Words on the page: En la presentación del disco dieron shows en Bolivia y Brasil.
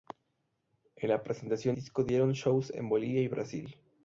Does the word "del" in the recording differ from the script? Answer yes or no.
yes